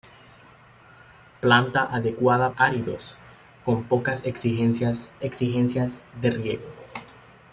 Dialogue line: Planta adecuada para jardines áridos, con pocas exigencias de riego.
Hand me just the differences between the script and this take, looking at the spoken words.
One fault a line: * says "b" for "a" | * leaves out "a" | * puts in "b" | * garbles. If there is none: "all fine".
* leaves out "para jardines"
* puts in "exigencias"